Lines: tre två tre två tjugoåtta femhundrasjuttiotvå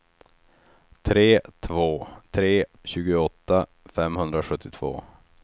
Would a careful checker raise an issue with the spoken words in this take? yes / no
yes